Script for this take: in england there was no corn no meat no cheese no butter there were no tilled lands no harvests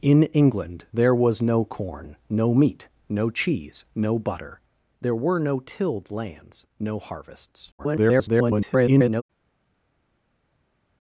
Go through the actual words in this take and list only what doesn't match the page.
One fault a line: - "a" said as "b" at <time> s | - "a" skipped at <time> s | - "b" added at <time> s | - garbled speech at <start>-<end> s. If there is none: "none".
- garbled speech at 7.8-9.2 s